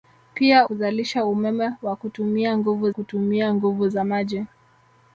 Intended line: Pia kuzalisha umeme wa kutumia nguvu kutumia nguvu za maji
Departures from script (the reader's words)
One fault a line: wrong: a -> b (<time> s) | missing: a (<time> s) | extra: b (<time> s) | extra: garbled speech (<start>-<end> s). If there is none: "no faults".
no faults